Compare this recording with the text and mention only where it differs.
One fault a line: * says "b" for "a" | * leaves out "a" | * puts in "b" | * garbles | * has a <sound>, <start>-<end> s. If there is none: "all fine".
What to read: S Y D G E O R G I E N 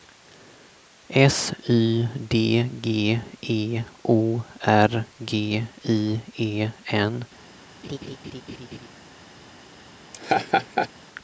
* has a laugh, 7.8-8.9 s
* has a laugh, 10.1-10.9 s